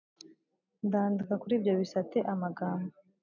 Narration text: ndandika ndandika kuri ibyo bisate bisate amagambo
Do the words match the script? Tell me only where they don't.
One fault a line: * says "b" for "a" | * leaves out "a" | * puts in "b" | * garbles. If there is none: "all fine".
* leaves out "ndandika"
* leaves out "bisate"